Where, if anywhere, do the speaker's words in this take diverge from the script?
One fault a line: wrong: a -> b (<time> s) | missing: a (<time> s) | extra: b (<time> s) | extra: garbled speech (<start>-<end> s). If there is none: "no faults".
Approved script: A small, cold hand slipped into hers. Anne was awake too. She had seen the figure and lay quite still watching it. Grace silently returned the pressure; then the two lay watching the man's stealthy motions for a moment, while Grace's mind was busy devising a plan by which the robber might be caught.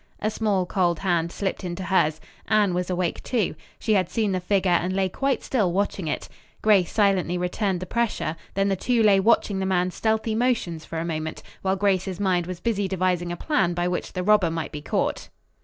no faults